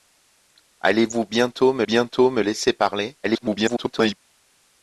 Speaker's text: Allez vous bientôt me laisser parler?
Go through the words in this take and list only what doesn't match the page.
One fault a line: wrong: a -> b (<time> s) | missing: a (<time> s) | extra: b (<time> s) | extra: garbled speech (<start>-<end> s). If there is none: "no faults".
extra: bientôt me (1.8 s)
extra: garbled speech (3.2-4.2 s)